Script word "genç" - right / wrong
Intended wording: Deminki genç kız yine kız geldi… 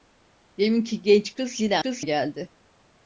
right